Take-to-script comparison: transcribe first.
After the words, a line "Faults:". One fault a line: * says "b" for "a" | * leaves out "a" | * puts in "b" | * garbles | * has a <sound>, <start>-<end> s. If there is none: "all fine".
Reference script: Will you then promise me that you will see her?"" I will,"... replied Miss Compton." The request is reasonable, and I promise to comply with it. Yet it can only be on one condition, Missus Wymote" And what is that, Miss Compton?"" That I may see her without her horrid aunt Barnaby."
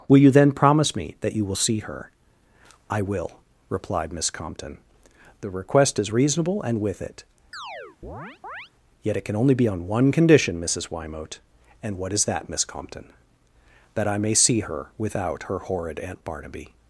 Will you then promise me that you will see her?"" I will,"... replied Miss Compton." The request is reasonable, and with it. Yet it can only be on one condition, Missus Wymote" And what is that, Miss Compton?"" That I may see her without her horrid aunt Barnaby."
Faults:
* leaves out "I promise to comply"
* has a chirp, 7.5-8.7 s